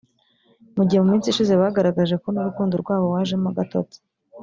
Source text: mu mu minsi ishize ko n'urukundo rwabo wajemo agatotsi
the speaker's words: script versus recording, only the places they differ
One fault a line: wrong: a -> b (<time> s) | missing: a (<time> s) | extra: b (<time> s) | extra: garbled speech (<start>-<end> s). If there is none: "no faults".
extra: gihe (0.9 s)
extra: bagaragaje (1.6 s)